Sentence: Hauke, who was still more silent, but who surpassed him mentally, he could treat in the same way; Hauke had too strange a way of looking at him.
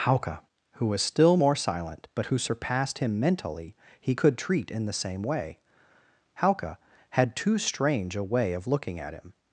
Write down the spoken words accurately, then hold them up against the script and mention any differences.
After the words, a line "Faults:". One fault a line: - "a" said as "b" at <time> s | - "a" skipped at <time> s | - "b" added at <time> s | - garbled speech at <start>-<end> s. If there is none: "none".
Hauke, who was still more silent, but who surpassed him mentally, he could treat in the same way; Hauke had too strange a way of looking at him.
Faults:
none